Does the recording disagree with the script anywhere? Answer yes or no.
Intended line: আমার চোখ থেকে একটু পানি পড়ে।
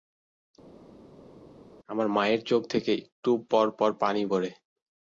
yes